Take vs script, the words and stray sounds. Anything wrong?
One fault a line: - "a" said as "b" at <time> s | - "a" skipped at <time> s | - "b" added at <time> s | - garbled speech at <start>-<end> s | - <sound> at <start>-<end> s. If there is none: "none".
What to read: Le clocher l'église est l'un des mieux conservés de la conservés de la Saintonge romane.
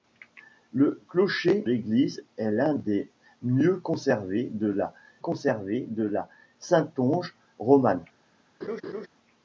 - laugh at 8.6-9.1 s